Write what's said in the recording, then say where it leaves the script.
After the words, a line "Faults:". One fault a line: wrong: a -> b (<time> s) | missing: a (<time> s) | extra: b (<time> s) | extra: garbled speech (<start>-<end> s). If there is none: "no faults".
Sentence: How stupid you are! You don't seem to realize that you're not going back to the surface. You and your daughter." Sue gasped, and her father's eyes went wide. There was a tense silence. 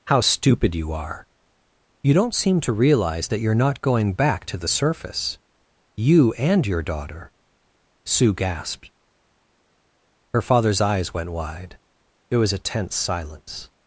How stupid you are! You don't seem to realize that you're not going back to the surface. You and your daughter." Sue gasped, her father's eyes went wide. There was a tense silence.
Faults:
missing: and (8.9 s)